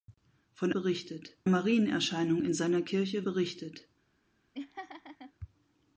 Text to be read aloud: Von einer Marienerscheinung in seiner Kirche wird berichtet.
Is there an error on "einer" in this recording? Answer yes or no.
yes